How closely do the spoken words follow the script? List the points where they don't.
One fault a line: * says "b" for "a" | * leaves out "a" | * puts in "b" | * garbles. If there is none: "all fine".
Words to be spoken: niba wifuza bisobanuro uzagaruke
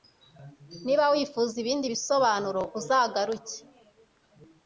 * puts in "ibindi"